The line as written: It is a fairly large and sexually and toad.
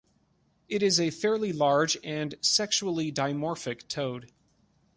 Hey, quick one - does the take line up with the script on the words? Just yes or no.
no